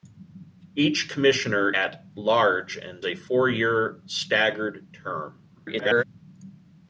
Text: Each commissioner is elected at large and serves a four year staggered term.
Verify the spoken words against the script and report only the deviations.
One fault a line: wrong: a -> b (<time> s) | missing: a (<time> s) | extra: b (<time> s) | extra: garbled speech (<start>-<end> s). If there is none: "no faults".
missing: is elected (1.7 s)
missing: serves (3.1 s)
extra: garbled speech (5.5-6.0 s)